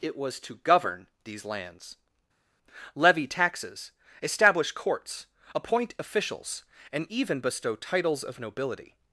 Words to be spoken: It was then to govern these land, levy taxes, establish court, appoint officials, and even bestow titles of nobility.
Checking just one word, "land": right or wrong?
wrong